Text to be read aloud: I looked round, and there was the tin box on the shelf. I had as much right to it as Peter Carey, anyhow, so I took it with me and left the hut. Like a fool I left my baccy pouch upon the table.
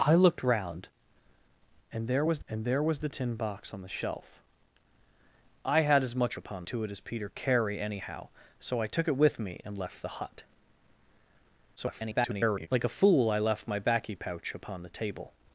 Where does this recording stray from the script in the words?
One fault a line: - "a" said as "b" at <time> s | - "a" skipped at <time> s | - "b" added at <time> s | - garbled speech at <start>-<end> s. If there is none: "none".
- "and there was" added at 2.5 s
- "right" said as "upon" at 6.4 s
- garbled speech at 11.8-12.7 s